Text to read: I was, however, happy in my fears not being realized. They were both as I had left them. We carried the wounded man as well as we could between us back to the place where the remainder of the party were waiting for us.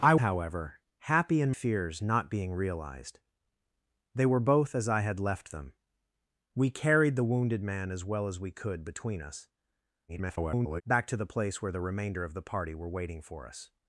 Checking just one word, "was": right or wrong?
wrong